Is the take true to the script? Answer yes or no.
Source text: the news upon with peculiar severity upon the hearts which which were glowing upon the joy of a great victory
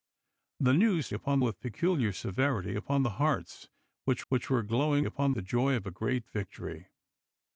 yes